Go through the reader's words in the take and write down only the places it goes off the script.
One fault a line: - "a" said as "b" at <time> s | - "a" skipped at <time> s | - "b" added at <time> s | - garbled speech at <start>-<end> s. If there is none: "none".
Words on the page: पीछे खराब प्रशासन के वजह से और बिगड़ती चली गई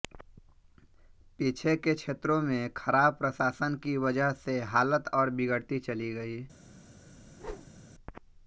- "के क्षेत्रों में" added at 1.8 s
- "के" said as "की" at 3.8 s
- "हालत" added at 4.7 s